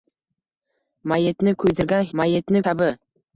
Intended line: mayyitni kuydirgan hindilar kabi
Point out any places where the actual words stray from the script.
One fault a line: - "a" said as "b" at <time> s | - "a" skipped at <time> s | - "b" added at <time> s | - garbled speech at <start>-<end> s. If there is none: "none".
- "hindilar" said as "mayyitni" at 2.2 s